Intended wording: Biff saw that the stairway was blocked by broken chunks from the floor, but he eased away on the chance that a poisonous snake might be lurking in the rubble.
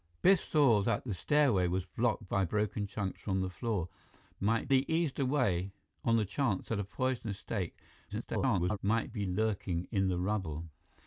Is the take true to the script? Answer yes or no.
no